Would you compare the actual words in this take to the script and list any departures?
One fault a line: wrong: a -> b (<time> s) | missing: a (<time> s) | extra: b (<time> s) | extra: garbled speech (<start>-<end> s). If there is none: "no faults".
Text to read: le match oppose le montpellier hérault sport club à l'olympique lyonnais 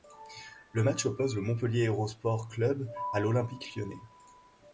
no faults